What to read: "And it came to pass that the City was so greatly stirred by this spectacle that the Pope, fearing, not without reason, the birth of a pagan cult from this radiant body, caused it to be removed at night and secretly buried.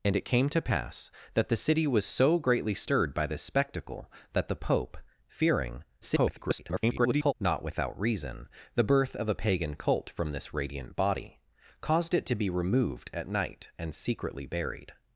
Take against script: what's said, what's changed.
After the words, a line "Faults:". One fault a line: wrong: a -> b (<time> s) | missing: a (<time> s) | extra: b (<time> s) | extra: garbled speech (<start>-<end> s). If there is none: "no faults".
"And it came to pass that the City was so greatly stirred by this spectacle that the Pope, fearing, [garbled] not without reason, the birth of a pagan cult from this radiant body, caused it to be removed at night and secretly buried.
Faults:
extra: garbled speech (6.0-7.3 s)